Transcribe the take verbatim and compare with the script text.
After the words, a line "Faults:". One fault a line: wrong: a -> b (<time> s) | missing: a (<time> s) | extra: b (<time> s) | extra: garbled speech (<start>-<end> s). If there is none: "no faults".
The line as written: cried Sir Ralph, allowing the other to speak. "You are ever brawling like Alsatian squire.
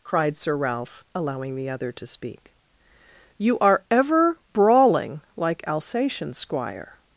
cried Sir Ralph, allowing the other to speak. "You are ever brawling like Alsatian squire.
Faults:
no faults